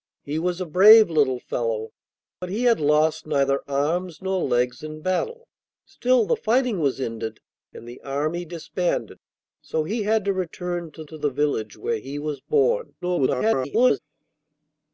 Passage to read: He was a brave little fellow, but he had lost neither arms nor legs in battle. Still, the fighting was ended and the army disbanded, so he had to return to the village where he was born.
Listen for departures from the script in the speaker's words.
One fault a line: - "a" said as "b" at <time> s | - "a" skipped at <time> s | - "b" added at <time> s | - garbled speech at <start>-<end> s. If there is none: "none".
- "to" added at 11.1 s
- garbled speech at 13.0-14.0 s